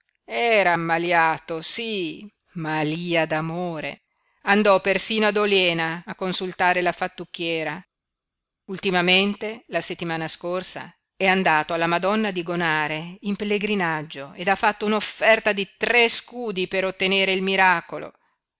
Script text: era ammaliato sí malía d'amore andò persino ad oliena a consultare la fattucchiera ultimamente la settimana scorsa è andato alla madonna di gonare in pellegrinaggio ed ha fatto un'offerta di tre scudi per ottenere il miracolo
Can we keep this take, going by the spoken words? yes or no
yes